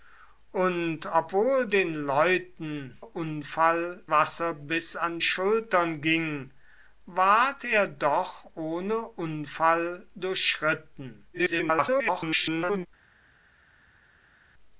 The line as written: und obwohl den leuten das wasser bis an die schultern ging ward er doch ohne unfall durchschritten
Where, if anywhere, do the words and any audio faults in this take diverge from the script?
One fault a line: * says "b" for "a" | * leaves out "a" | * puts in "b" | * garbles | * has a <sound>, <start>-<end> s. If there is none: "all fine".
* says "unfall" for "das"
* leaves out "die"
* garbles